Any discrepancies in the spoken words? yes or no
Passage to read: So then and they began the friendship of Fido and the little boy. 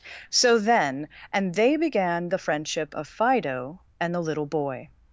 no